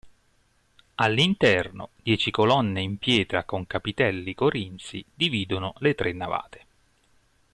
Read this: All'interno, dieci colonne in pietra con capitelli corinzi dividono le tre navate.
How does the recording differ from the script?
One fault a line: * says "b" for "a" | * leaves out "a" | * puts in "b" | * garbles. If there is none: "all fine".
all fine